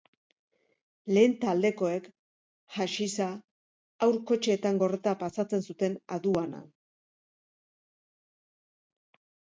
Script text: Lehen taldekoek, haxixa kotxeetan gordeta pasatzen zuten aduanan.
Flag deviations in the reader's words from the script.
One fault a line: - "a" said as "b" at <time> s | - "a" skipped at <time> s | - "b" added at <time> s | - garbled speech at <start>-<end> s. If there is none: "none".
- "haur" added at 4.0 s